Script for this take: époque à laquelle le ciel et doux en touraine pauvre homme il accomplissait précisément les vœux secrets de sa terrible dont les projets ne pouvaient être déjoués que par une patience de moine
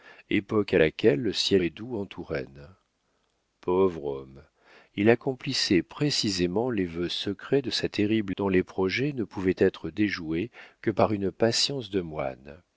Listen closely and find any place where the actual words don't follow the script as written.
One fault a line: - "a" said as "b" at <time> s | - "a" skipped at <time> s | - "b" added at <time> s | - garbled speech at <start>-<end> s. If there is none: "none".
none